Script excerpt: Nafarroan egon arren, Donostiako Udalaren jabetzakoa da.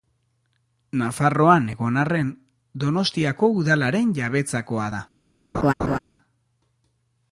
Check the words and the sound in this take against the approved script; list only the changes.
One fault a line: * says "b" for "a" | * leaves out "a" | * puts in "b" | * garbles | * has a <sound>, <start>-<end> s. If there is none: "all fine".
* has a laugh, 5.5-6.0 s